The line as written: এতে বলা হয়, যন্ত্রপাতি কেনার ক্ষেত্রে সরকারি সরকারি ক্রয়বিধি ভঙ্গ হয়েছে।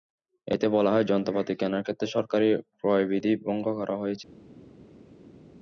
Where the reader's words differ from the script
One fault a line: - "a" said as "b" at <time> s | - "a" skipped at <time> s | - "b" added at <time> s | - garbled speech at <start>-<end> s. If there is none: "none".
- "সরকারি" skipped at 2.5 s
- "করা" added at 3.8 s